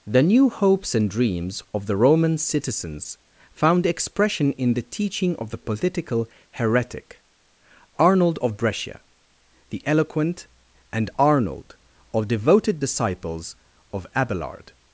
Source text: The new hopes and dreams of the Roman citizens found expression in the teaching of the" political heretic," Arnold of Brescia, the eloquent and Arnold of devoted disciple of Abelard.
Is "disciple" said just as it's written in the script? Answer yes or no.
no